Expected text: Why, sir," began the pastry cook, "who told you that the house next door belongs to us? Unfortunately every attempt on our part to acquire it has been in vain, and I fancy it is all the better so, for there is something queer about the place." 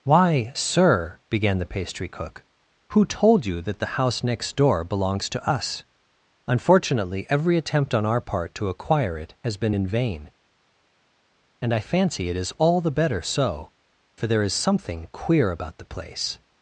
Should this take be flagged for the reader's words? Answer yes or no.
no